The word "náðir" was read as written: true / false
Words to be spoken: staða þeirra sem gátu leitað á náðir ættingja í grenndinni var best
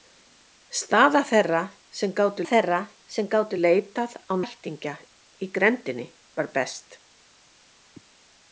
false